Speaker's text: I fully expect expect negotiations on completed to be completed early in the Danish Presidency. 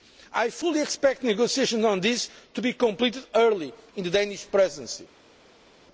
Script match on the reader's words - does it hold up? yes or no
no